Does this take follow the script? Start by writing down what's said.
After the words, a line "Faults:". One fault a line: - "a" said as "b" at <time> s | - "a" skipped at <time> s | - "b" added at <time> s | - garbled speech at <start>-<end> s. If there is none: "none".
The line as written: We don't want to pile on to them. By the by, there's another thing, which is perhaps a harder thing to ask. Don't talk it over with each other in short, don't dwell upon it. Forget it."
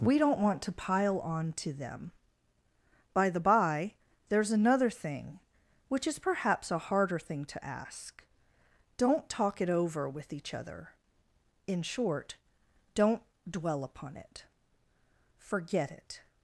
We don't want to pile on to them. By the by, there's another thing, which is perhaps a harder thing to ask. Don't talk it over with each other in short, don't dwell upon it. Forget it."
Faults:
none